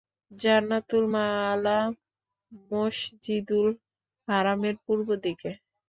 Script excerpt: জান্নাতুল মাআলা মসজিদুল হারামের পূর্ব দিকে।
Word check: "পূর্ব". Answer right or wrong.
right